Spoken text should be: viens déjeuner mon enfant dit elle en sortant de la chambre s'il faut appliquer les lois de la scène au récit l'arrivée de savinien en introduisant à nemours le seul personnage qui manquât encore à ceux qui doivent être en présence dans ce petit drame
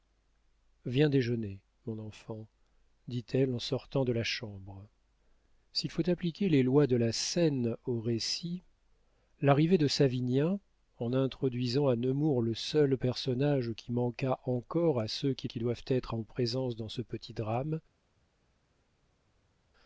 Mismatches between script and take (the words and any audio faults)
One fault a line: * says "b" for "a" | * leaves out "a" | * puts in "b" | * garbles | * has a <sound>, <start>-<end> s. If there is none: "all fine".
* puts in "qui"